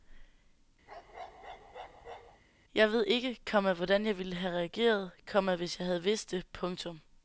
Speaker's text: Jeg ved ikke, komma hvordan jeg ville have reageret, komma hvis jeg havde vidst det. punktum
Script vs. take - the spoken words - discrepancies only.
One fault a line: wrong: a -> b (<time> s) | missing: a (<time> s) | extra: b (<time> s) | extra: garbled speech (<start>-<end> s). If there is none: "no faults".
no faults